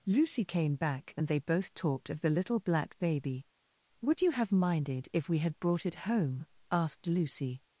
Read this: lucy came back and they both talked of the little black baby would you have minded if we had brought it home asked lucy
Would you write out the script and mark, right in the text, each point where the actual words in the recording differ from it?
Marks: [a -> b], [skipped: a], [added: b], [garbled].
lucy came back and they both talked of the little black baby would you have minded if we had brought it home asked lucy